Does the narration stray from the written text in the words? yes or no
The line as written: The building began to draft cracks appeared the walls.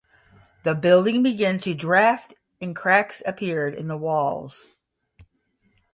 yes